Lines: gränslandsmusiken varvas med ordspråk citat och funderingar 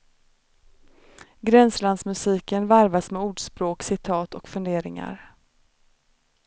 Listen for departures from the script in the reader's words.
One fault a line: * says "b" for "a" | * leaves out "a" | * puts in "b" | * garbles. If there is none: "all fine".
all fine